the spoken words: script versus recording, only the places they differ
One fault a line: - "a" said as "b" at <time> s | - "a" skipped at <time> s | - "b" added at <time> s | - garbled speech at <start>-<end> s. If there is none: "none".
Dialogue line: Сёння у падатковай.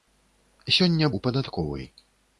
none